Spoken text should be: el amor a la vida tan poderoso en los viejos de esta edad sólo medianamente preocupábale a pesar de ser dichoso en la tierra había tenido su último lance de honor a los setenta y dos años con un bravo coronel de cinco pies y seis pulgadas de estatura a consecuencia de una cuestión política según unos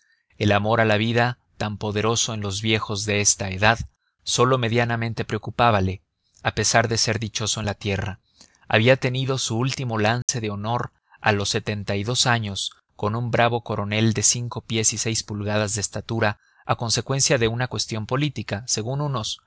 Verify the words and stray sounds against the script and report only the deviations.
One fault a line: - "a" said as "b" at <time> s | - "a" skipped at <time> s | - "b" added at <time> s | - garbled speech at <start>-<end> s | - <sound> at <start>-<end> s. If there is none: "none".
- dropout at 10.2-10.3 s